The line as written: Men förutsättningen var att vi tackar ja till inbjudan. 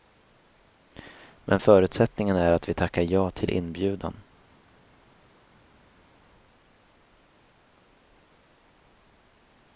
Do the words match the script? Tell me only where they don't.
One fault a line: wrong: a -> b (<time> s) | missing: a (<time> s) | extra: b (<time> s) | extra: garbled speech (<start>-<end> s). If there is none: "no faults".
wrong: var -> är (2.4 s)